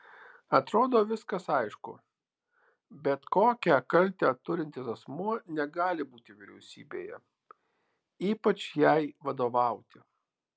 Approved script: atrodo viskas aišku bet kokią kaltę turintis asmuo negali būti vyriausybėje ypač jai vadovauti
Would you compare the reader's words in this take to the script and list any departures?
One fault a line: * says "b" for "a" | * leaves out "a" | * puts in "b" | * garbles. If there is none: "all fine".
all fine